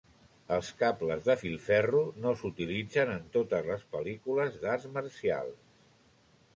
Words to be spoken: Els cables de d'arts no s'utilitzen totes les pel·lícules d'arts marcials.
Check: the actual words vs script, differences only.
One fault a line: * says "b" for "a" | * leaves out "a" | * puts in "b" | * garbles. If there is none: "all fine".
* says "filferro" for "d'arts"
* puts in "en"